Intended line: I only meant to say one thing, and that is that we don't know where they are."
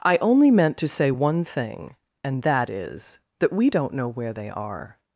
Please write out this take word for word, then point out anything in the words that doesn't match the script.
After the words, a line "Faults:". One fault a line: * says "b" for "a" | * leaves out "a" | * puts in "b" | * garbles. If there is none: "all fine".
I only meant to say one thing, and that is that we don't know where they are."
Faults:
all fine